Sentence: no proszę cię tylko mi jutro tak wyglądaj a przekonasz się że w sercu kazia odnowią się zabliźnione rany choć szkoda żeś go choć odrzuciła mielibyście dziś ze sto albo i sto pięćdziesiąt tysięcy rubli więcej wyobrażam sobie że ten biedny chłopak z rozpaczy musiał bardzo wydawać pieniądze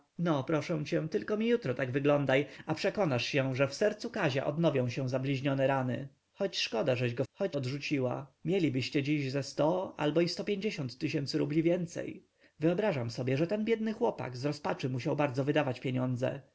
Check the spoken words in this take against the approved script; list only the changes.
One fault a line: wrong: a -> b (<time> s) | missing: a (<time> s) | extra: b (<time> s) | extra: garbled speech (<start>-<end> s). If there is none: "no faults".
no faults